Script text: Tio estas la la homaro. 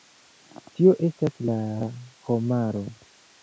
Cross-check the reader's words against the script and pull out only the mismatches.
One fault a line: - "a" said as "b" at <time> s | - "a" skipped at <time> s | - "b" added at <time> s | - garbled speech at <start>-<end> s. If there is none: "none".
none